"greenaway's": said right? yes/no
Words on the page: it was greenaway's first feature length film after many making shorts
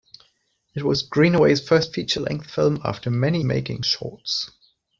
yes